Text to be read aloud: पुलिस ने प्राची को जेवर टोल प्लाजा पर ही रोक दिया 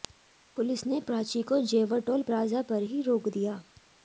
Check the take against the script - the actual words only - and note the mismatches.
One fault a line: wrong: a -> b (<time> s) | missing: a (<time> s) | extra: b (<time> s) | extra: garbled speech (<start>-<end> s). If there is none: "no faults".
no faults